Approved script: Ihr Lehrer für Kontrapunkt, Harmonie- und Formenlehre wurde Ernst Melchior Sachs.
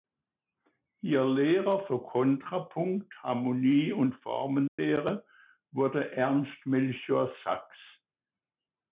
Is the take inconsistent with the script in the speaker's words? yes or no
no